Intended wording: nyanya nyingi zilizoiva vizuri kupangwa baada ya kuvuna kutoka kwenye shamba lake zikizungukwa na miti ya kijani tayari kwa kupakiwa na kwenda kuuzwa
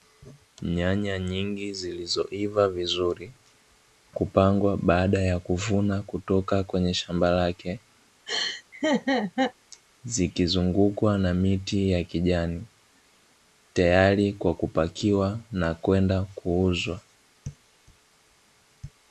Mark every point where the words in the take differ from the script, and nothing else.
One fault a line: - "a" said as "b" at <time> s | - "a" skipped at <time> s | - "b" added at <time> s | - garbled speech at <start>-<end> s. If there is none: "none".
none